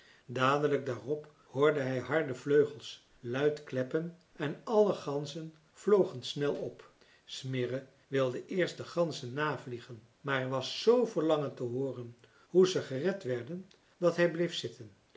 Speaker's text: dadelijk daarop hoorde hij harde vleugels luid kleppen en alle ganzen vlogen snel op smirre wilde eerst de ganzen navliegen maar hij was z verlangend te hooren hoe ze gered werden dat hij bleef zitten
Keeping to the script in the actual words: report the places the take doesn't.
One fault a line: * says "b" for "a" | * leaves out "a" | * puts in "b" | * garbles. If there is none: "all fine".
all fine